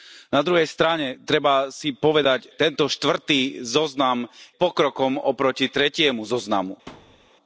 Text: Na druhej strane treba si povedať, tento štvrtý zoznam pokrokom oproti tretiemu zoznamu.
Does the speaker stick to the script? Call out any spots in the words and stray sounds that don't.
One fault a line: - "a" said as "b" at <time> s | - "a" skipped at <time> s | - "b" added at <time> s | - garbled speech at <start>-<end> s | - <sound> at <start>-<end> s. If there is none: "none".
- thud at 6.9-7.3 s